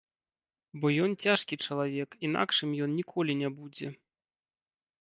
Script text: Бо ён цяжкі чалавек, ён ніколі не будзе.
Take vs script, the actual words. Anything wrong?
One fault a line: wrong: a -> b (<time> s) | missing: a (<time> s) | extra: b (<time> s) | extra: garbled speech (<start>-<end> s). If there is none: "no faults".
extra: інакшым (2.3 s)